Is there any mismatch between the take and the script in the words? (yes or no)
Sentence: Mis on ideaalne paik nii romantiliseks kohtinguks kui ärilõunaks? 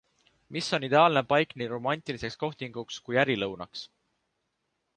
no